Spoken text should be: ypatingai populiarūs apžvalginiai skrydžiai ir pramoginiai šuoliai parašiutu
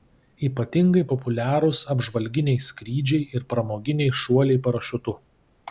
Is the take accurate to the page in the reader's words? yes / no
yes